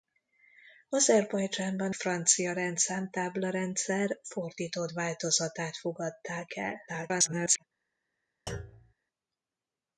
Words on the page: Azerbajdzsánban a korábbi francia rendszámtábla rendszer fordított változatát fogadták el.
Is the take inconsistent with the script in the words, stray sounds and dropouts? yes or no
yes